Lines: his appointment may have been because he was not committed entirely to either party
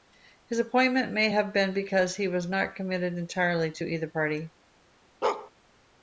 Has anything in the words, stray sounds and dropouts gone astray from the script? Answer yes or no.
yes